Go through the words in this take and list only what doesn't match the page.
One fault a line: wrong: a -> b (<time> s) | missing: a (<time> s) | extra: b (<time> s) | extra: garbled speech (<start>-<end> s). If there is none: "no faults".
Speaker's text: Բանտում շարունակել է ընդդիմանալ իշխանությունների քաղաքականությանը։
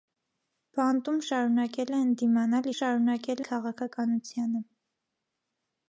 wrong: իշխանությունների -> շարունակել (2.7 s)